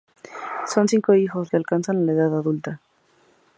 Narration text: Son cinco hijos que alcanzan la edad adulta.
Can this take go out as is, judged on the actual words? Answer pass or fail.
pass